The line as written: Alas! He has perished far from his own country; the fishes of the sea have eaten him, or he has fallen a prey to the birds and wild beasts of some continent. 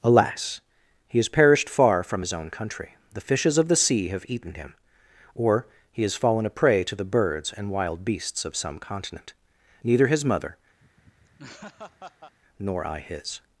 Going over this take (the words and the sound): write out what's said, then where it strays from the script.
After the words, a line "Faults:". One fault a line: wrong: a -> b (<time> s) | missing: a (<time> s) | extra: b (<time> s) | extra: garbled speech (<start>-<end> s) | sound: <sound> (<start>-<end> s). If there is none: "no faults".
Alas! He has perished far from his own country; the fishes of the sea have eaten him, or he has fallen a prey to the birds and wild beasts of some continent. Neither his mother, nor I his
Faults:
extra: Neither his mother nor I his (9.8 s)
sound: laugh (10.8-12.3 s)